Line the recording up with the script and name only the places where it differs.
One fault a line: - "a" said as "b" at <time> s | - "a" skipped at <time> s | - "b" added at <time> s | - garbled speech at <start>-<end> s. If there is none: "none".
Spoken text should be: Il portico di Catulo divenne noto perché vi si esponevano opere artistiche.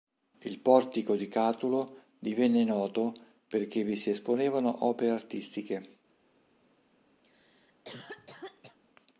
none